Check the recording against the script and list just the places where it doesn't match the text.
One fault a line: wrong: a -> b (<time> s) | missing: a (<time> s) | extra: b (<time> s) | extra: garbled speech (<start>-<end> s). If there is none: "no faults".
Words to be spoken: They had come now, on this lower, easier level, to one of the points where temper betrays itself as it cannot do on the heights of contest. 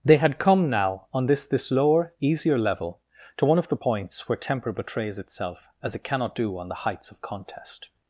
extra: this (1.4 s)